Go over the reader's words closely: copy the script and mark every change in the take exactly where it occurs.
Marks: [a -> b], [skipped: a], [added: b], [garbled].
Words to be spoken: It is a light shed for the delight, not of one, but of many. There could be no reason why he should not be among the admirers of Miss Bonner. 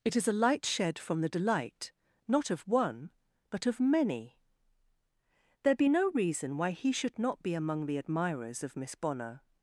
It is a light shed [for -> from] the delight, not of one, but of many. There [skipped: could] be no reason why he should not be among the admirers of Miss Bonner.